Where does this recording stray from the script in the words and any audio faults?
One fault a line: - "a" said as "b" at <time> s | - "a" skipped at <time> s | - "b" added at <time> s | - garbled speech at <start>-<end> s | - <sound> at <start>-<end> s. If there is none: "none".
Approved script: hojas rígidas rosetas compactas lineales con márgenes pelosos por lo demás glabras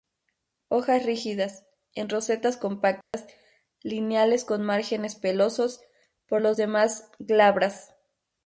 - "en" added at 1.9 s
- dropout at 3.0-3.1 s